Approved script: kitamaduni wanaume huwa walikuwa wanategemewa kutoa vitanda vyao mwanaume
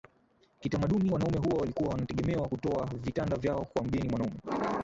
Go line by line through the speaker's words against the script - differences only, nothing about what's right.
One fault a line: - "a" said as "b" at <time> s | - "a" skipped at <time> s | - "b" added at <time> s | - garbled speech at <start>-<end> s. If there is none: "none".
- "kwa mgeni" added at 3.6 s